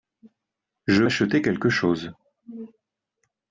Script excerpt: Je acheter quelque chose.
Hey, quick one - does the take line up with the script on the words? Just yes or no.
yes